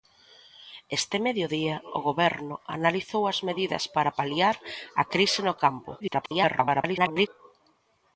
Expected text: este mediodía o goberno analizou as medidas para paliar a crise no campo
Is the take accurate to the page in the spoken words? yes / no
no